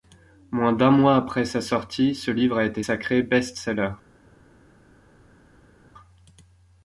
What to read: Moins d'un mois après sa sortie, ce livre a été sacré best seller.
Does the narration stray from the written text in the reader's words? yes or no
no